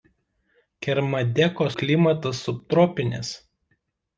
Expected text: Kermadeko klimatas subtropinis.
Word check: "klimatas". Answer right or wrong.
right